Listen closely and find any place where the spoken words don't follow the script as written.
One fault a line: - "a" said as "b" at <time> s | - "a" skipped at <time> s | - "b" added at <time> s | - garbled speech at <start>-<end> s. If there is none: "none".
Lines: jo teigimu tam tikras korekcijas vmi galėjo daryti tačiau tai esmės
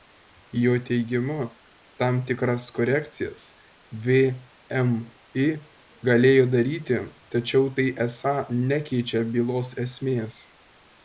- "esą nekeičia bylos" added at 8.1 s